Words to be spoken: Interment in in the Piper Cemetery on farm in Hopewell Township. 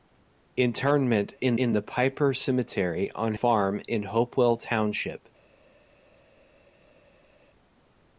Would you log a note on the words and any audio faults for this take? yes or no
no